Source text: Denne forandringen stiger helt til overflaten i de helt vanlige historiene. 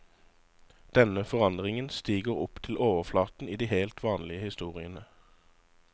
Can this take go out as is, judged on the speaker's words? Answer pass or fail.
fail